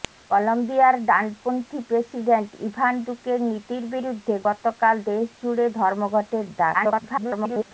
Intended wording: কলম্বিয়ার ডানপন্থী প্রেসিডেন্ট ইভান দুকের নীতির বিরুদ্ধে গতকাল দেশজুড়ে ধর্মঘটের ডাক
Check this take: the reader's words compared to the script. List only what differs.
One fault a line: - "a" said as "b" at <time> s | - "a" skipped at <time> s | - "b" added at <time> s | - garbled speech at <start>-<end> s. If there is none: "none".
- garbled speech at 6.7-7.7 s